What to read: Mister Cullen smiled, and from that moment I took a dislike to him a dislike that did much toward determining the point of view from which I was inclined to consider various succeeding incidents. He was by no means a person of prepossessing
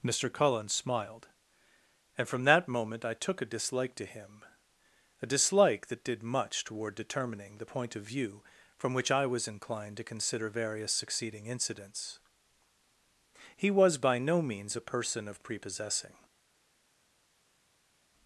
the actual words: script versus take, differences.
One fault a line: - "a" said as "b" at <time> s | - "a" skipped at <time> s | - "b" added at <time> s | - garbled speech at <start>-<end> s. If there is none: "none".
none